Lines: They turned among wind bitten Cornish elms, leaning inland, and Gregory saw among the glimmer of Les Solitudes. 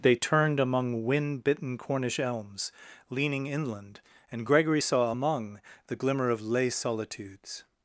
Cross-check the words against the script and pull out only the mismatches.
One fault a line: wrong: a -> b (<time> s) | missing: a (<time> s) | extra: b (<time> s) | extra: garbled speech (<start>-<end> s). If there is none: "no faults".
no faults